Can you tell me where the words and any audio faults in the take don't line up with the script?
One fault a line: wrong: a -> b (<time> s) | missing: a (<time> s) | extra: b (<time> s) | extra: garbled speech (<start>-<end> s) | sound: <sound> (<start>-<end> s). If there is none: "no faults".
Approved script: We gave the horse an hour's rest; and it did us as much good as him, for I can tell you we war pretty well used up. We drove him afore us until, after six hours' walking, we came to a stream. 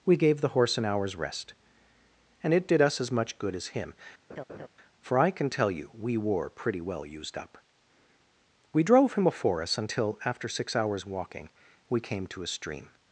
sound: laugh (4.3-4.7 s)
wrong: war -> were (6.2 s)
wrong: afore -> before (9.2 s)